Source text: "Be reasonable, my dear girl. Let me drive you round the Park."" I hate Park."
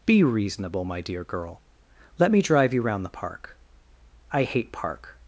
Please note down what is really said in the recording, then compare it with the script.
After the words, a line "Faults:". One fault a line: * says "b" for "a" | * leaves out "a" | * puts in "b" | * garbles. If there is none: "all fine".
"Be reasonable, my dear girl. Let me drive you round the Park."" I hate Park."
Faults:
all fine